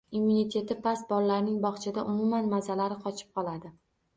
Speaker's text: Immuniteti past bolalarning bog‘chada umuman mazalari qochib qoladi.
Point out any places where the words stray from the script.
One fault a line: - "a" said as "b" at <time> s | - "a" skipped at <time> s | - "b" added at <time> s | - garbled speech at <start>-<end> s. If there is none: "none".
none